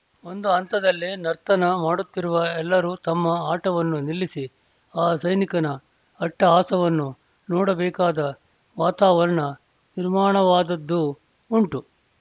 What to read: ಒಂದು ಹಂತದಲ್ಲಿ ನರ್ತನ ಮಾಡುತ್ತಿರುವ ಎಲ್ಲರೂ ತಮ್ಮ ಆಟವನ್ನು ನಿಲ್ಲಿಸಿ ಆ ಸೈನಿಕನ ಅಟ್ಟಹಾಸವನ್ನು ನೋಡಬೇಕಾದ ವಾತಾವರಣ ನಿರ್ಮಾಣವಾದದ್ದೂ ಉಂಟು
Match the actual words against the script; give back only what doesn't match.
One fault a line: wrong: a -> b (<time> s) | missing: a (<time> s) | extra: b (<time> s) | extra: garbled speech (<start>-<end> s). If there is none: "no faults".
no faults